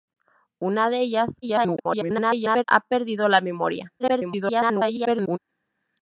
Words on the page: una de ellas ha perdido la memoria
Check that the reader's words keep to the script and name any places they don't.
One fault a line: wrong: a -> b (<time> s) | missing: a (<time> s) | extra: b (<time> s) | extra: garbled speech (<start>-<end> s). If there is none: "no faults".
extra: garbled speech (1.4-2.6 s)
extra: garbled speech (4.0-5.4 s)